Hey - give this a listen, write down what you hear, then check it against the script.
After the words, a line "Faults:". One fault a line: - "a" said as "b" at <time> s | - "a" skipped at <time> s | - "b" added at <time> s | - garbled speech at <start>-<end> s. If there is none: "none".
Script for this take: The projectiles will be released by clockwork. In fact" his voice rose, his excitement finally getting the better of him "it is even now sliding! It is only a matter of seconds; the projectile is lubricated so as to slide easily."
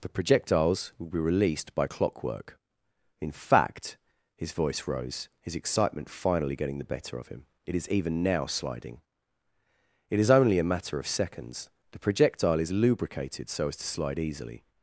The projectiles will be released by clockwork. In fact" his voice rose, his excitement finally getting the better of him "it is even now sliding! It is only a matter of seconds; the projectile is lubricated so as to slide easily."
Faults:
none